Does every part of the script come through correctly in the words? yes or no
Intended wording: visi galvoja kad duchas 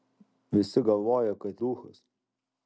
yes